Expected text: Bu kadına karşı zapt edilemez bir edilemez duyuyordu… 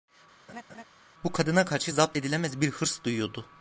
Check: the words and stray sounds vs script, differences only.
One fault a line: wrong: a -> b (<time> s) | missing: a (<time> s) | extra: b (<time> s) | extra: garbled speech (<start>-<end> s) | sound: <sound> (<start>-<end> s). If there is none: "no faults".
sound: laugh (0.5-0.8 s)
wrong: edilemez -> hırs (2.7 s)